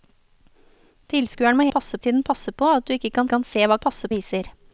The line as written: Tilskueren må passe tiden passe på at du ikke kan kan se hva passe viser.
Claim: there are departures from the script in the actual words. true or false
false